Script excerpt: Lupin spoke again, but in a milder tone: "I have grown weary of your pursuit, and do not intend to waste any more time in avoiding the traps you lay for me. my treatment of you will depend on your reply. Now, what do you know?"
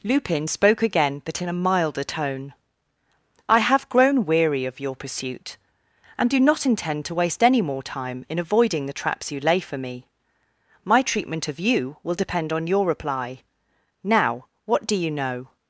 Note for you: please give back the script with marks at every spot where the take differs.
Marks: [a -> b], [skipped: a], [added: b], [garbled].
Lupin spoke again, but in a milder tone: "I have grown weary of your pursuit, and do not intend to waste any more time in avoiding the traps you lay for me. my treatment of you will depend on your reply. Now, what do you know?"